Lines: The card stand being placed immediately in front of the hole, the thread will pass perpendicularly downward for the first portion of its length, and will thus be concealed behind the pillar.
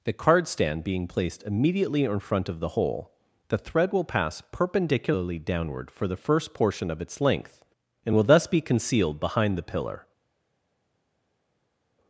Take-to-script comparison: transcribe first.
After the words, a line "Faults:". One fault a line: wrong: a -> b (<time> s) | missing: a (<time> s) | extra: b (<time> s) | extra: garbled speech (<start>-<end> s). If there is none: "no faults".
The card stand being placed immediately in front of the hole, the thread will pass perpendicularly downward for the first portion of its length, and will thus be concealed behind the pillar.
Faults:
no faults